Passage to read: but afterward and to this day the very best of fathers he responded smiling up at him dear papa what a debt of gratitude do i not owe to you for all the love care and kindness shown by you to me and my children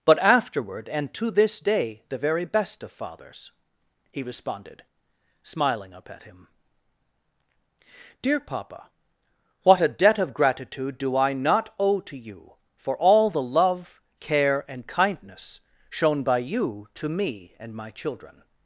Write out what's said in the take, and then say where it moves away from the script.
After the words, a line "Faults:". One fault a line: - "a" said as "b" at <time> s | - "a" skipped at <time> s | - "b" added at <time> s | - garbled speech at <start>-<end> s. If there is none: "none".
but afterward and to this day the very best of fathers he responded smiling up at him dear papa what a debt of gratitude do i not owe to you for all the love care and kindness shown by you to me and my children
Faults:
none